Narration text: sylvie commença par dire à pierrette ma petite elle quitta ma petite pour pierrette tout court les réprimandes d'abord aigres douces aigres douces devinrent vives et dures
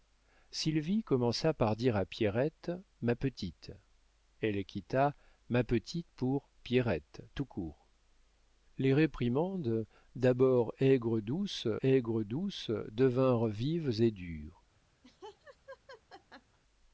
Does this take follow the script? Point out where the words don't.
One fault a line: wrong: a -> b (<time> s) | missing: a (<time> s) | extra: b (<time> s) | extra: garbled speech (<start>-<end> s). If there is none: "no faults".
no faults